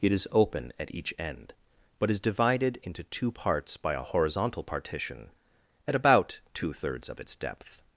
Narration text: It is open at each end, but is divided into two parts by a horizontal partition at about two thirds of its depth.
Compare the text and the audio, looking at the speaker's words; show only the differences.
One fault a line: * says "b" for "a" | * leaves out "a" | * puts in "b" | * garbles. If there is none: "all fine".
all fine